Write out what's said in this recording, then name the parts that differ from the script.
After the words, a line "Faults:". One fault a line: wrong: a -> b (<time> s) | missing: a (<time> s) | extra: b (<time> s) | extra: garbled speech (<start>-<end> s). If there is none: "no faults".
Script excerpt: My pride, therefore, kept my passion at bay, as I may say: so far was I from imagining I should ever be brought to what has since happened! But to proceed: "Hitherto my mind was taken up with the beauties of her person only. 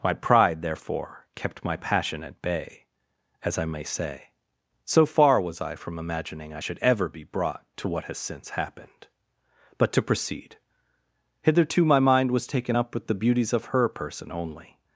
My pride, therefore, kept my passion at bay, as I may say: so far was I from imagining I should ever be brought to what has since happened! But to proceed: "Hitherto my mind was taken up with the beauties of her person only.
Faults:
no faults